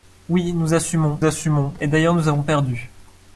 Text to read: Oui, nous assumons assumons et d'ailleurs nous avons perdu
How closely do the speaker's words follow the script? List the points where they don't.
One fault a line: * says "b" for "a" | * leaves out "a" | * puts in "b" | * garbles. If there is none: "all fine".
all fine